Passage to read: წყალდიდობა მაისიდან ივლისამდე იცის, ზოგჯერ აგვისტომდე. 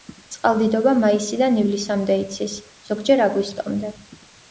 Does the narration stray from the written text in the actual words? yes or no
no